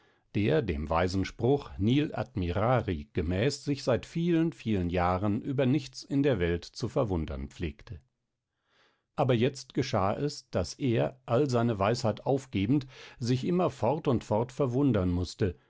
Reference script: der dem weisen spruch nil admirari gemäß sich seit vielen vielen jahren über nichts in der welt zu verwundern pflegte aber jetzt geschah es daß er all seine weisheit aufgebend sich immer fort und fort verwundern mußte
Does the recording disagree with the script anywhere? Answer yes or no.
no